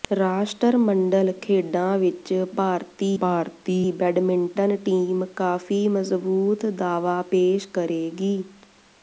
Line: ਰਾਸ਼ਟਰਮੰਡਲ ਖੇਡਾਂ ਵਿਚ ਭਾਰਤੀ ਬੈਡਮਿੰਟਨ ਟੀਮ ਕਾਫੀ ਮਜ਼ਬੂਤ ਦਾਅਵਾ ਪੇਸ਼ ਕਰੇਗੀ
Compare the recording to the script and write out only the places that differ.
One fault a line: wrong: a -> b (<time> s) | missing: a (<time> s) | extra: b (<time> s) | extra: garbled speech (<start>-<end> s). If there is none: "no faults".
extra: ਭਾਰਤੀ (3.2 s)